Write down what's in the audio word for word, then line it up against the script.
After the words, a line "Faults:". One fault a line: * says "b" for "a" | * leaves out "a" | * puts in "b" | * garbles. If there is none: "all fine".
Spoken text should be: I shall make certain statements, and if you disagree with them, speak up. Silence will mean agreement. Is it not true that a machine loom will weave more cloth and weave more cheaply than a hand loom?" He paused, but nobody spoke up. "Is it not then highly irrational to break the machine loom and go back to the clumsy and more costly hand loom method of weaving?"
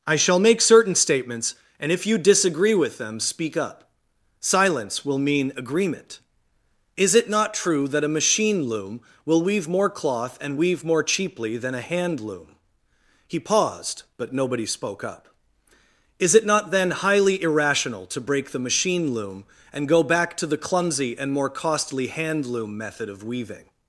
I shall make certain statements, and if you disagree with them, speak up. Silence will mean agreement. Is it not true that a machine loom will weave more cloth and weave more cheaply than a hand loom?" He paused, but nobody spoke up. "Is it not then highly irrational to break the machine loom and go back to the clumsy and more costly hand loom method of weaving?"
Faults:
all fine